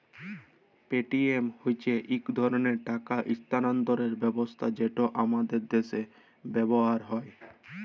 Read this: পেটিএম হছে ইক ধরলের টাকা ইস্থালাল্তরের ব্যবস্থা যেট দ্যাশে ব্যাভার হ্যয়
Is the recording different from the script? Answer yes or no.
yes